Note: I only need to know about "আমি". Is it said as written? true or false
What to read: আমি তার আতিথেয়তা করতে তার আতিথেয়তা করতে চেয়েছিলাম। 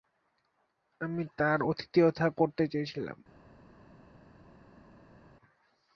true